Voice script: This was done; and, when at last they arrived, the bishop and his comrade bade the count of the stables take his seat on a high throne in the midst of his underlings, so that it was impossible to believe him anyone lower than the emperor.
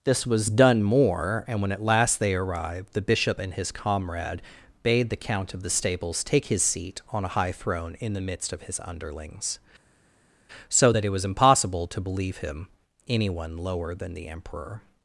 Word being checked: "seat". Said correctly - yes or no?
yes